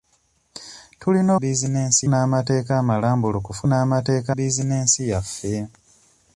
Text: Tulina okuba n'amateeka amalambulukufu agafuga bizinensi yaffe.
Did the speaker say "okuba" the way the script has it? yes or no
no